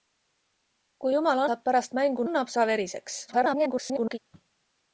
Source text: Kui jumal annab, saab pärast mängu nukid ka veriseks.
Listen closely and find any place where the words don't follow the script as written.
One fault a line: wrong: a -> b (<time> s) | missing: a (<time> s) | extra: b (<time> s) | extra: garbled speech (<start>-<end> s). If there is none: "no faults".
missing: annab (1.4 s)
wrong: nukid -> annab (2.2 s)
extra: garbled speech (3.3-4.2 s)